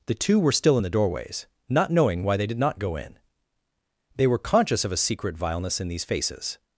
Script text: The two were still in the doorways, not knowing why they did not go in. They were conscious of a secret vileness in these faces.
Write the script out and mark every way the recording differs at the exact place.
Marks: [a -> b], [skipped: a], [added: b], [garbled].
The two were still in the doorways, not knowing why they did not go in. They were conscious of a secret vileness in these faces.